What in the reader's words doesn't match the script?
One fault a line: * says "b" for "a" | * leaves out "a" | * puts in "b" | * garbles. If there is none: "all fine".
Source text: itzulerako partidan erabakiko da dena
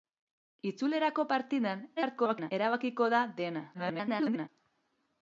* garbles
* garbles